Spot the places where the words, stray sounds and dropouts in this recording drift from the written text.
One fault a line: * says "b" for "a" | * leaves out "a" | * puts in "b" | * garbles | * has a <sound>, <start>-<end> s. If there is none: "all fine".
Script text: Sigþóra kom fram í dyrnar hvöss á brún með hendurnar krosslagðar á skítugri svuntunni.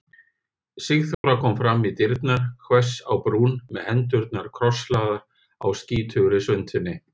* has a dropout, 1.1-1.2 s